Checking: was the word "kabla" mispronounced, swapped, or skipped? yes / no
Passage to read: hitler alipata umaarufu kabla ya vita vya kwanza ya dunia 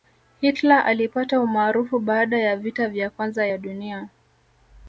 yes